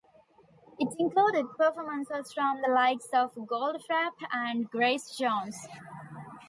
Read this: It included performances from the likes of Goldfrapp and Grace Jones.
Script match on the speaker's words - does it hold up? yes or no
yes